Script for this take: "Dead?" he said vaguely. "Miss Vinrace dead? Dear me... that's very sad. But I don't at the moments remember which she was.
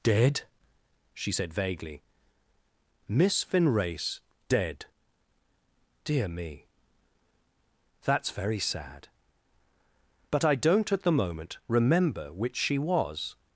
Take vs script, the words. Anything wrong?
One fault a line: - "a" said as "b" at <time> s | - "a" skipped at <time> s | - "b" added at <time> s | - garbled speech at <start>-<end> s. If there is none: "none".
- "he" said as "she" at 1.1 s
- "moments" said as "moment" at 11.1 s